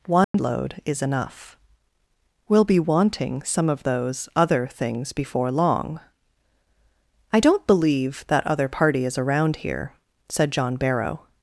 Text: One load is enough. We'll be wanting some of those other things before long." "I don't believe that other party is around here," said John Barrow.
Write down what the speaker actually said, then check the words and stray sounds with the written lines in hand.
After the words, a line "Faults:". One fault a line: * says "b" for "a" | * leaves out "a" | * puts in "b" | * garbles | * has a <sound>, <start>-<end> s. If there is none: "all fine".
One load is enough. We'll be wanting some of those other things before long." "I don't believe that other party is around here," said John Barrow.
Faults:
* has a dropout, 0.2-0.3 s